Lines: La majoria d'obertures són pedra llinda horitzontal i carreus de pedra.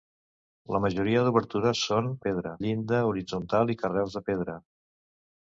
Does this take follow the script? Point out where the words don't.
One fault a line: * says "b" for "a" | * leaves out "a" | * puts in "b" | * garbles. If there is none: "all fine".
all fine